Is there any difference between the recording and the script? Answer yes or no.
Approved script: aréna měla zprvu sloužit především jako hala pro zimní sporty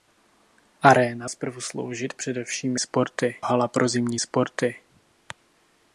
yes